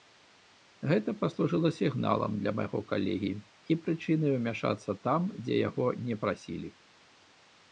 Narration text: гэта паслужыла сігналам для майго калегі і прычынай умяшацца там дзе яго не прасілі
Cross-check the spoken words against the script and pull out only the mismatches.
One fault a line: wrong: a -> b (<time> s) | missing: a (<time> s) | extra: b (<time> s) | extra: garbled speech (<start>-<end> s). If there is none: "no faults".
no faults